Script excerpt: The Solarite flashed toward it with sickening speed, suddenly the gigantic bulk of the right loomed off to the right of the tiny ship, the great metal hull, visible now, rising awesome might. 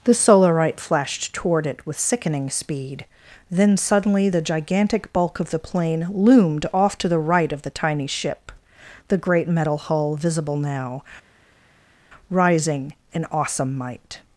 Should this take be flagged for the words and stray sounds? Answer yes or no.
yes